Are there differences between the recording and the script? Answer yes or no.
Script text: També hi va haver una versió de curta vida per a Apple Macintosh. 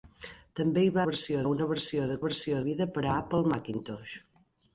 yes